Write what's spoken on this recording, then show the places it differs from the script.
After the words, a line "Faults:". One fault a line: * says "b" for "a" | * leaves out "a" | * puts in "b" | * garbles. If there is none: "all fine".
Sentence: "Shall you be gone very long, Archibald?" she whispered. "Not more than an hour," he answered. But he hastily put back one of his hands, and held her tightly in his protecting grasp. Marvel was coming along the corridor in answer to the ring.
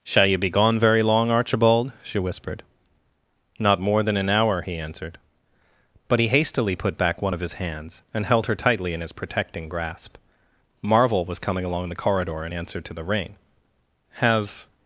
"Shall you be gone very long, Archibald?" she whispered. "Not more than an hour," he answered. But he hastily put back one of his hands, and held her tightly in his protecting grasp. Marvel was coming along the corridor in answer to the ring. "Have
Faults:
* puts in "Have"